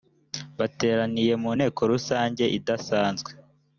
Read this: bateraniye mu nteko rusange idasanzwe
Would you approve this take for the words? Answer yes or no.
yes